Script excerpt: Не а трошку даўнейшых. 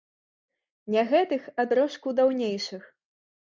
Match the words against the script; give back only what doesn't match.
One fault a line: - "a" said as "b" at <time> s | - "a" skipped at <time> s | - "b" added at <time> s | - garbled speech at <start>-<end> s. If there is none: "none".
- "гэтых" added at 1.1 s